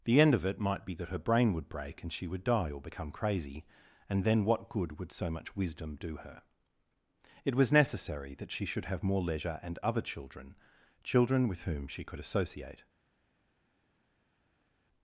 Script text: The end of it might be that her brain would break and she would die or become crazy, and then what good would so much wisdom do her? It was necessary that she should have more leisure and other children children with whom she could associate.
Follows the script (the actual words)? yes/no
yes